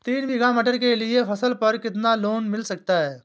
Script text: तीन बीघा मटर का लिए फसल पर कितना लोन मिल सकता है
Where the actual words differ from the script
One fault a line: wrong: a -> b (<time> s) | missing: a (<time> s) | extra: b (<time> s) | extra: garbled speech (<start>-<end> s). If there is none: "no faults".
wrong: का -> के (0.8 s)